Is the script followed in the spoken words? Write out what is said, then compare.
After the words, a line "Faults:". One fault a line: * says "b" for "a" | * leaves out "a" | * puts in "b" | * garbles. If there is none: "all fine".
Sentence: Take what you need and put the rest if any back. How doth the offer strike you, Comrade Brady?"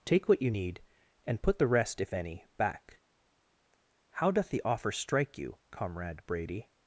Take what you need and put the rest if any back. How doth the offer strike you, Comrade Brady?"
Faults:
all fine